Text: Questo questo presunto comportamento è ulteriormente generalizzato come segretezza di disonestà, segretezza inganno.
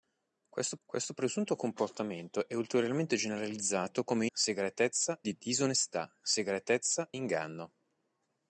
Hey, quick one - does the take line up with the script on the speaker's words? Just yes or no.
yes